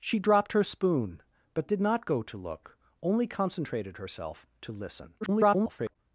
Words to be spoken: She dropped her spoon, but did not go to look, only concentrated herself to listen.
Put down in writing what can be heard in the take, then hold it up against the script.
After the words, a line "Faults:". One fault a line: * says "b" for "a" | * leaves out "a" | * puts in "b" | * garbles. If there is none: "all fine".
She dropped her spoon, but did not go to look, only concentrated herself to listen. [garbled]
Faults:
* garbles